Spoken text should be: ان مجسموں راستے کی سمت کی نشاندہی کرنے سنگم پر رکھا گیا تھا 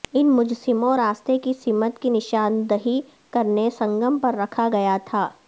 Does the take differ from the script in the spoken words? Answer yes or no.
no